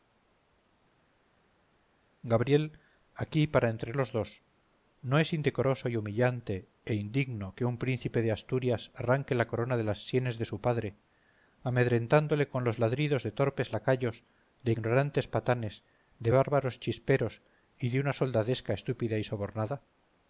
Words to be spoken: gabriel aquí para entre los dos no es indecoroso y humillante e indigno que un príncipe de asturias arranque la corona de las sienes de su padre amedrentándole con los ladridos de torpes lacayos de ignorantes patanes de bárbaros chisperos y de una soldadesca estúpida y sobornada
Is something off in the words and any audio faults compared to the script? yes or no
no